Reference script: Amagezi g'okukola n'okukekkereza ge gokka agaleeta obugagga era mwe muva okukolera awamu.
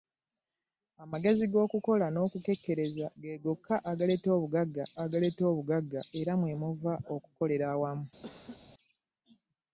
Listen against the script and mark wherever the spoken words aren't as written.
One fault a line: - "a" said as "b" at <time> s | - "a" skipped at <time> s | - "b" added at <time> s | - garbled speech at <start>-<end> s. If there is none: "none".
- "agaleeta obugagga" added at 5.0 s